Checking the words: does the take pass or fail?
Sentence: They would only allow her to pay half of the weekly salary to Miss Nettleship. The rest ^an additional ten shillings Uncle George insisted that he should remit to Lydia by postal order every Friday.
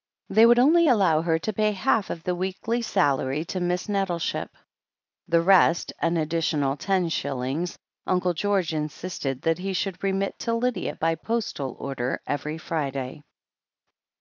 pass